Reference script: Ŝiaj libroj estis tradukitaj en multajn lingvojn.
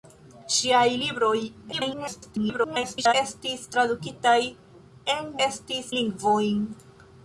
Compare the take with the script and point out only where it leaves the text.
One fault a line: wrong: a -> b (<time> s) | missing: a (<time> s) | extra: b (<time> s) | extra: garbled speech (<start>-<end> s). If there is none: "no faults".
extra: garbled speech (1.7-3.1 s)
wrong: multajn -> estis (5.5 s)